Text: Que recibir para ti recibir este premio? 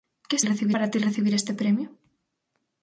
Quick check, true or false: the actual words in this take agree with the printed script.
true